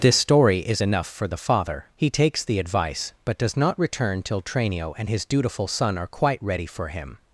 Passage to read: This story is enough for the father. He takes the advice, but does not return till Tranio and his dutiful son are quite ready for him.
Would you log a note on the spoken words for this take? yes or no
no